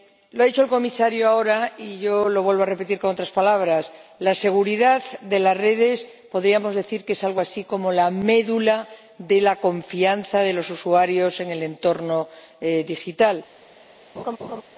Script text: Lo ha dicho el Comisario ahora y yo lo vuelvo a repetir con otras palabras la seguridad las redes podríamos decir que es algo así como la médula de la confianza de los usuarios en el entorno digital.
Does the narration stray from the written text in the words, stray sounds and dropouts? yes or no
yes